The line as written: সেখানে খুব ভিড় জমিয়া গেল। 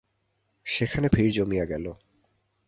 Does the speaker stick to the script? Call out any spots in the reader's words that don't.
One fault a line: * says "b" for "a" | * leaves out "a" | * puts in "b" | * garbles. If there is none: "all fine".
* leaves out "খুব"